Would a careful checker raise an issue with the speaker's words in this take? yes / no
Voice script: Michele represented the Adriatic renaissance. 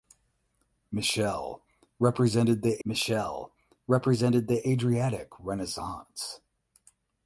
yes